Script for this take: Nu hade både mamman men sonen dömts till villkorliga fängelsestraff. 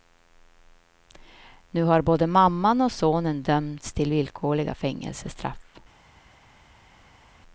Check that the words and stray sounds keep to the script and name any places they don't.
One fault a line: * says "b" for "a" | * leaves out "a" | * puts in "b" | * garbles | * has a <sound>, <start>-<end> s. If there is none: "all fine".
* says "har" for "hade"
* says "och" for "men"